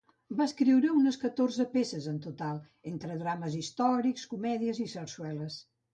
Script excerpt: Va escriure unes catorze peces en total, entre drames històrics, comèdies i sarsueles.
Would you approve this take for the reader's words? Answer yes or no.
yes